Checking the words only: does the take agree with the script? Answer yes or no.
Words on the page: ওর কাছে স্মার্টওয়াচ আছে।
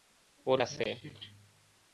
no